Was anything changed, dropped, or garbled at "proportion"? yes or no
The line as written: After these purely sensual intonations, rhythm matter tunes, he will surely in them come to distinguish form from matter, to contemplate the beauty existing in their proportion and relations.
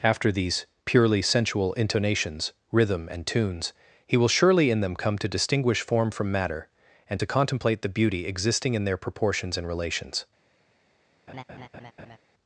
yes